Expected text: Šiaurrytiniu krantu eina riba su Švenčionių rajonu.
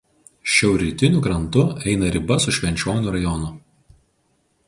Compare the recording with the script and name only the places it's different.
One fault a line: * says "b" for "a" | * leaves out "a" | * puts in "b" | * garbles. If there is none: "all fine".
all fine